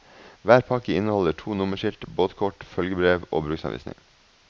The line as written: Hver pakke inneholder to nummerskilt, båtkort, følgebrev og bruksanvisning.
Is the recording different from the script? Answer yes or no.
no